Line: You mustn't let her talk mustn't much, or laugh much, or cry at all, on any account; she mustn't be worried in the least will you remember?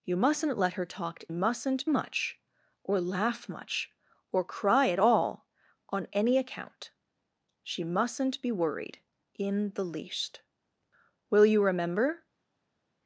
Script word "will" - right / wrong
right